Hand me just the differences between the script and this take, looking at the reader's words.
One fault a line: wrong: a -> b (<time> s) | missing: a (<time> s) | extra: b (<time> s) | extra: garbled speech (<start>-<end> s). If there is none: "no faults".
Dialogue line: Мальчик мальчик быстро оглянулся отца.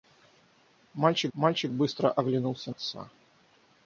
no faults